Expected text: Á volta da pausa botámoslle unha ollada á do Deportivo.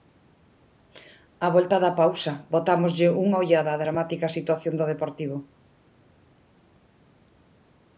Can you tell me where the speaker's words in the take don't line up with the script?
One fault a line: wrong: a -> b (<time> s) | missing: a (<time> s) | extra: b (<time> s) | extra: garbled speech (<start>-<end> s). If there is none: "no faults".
extra: dramática situación (3.8 s)